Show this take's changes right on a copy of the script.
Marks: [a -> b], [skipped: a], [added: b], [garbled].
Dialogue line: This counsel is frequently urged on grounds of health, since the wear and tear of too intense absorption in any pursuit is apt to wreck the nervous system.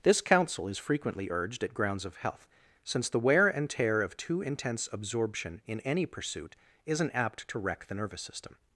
This counsel is frequently urged [on -> at] grounds of health, since the wear and tear of too intense absorption in any pursuit [is -> isn't] apt to wreck the nervous system.